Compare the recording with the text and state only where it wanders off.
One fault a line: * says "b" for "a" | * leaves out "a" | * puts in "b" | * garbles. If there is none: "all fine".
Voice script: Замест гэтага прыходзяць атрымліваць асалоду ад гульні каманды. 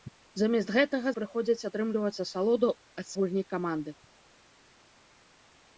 all fine